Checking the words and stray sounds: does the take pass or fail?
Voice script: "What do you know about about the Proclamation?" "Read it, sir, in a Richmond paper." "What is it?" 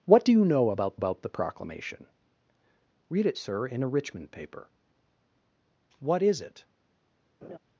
fail